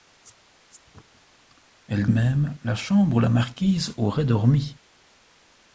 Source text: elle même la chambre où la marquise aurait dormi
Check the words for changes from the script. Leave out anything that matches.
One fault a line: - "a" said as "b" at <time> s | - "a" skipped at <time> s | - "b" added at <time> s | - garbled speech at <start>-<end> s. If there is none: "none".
none